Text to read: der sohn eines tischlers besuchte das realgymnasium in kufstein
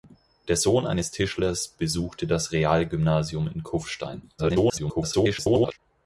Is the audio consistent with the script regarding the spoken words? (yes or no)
no